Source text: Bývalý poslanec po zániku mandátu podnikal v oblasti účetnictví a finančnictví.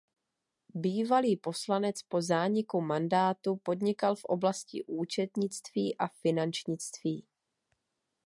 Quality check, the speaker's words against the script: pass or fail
pass